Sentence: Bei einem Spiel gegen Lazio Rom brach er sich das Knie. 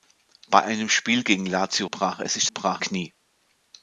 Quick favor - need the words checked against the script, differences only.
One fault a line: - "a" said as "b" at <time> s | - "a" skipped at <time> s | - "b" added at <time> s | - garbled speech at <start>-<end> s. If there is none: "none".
- "Rom" skipped at 1.9 s
- "das" said as "brach" at 2.5 s